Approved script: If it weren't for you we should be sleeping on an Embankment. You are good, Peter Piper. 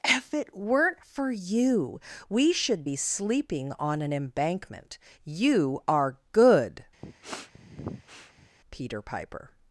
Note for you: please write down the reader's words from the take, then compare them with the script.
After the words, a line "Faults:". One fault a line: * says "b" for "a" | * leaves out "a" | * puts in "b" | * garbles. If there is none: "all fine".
If it weren't for you we should be sleeping on an Embankment. You are good, Peter Piper.
Faults:
all fine